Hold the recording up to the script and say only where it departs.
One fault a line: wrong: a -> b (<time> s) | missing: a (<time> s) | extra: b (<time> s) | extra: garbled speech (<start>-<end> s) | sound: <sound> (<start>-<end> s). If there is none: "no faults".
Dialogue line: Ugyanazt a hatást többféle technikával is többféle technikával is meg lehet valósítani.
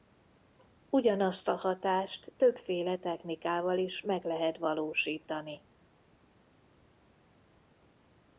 missing: többféle technikával is (4.0 s)